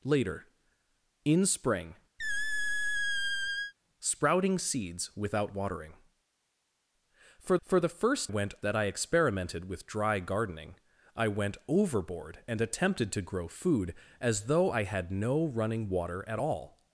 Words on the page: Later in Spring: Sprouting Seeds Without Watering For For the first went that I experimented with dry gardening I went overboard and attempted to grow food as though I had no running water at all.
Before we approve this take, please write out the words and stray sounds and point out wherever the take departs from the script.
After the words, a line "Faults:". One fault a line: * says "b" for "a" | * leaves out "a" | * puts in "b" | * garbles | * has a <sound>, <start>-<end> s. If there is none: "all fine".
Later in Spring: Sprouting Seeds Without Watering For For the first went that I experimented with dry gardening I went overboard and attempted to grow food as though I had no running water at all.
Faults:
* has a squeak, 2.2-3.7 s